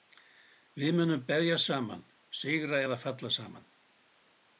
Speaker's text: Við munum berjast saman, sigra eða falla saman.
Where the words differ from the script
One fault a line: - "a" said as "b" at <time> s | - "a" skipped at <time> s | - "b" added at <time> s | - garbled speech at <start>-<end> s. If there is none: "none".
none